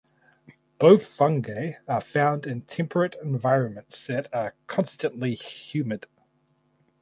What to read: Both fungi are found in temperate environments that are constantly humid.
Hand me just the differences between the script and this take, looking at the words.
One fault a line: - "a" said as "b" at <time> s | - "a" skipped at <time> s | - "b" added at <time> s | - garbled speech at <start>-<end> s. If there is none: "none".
none